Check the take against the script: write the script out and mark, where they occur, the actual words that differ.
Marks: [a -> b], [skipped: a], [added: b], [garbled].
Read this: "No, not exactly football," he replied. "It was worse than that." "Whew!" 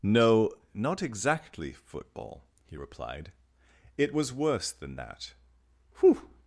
"No, not exactly football," he replied. "It was worse than that." "Whew!"